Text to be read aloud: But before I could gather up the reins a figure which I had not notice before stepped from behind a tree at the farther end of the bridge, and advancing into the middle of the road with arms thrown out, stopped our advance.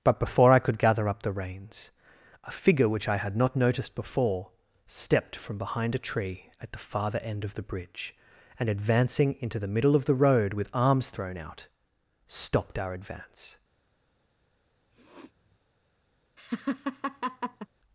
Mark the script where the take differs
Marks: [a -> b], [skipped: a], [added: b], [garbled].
But before I could gather up the reins a figure which I had not [notice -> noticed] before stepped from behind a tree at the farther end of the bridge, and advancing into the middle of the road with arms thrown out, stopped our advance.